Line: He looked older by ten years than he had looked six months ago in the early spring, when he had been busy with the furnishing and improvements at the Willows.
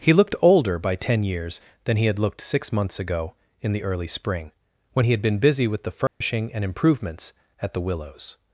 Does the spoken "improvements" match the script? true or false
true